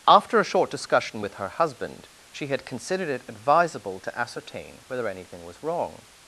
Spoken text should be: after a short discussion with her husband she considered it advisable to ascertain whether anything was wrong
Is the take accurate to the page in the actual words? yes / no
no